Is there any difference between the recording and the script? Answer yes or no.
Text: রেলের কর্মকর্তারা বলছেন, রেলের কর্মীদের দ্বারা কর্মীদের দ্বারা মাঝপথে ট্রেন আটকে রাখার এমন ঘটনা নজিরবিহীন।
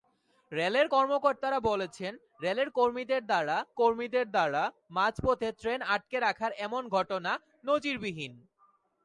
no